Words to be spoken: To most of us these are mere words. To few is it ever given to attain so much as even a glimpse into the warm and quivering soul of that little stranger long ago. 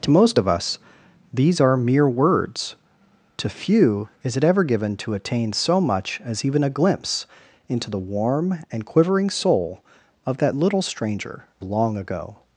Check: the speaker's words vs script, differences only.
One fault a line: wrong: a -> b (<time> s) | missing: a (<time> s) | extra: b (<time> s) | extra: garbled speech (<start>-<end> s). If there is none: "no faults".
no faults